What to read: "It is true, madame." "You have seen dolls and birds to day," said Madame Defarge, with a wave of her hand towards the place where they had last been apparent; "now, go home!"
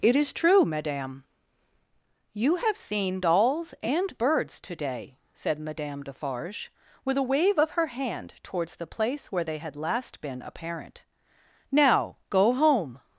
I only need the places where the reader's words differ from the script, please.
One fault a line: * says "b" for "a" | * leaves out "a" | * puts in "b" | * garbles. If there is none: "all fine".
all fine